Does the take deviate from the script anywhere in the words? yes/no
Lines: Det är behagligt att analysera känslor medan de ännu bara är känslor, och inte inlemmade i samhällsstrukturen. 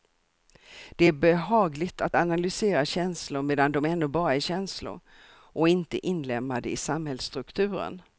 no